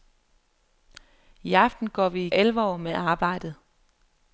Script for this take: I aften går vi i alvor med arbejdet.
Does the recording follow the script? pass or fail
pass